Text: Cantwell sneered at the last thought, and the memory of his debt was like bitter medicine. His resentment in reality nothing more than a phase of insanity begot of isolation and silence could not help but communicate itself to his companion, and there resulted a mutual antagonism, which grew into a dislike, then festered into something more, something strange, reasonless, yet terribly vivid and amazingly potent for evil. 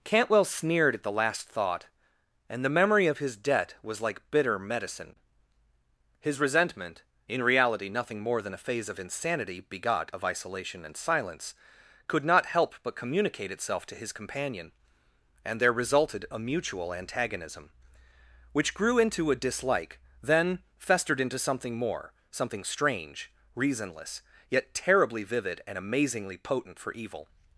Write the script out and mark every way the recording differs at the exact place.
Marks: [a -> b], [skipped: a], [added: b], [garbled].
Cantwell sneered at the last thought, and the memory of his debt was like bitter medicine. His resentment in reality nothing more than a phase of insanity begot of isolation and silence could not help but communicate itself to his companion, and there resulted a mutual antagonism, which grew into a dislike, then festered into something more, something strange, reasonless, yet terribly vivid and amazingly potent for evil.